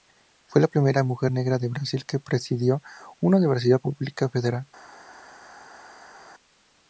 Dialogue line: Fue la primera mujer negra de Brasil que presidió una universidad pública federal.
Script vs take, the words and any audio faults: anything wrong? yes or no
no